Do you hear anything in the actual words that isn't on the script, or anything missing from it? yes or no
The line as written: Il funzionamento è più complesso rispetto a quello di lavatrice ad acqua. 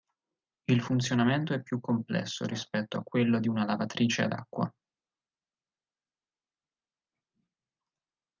yes